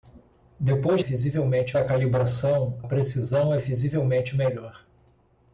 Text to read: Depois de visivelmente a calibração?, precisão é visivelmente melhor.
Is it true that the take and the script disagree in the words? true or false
false